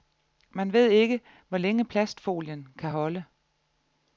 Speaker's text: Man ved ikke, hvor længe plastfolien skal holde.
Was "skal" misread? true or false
true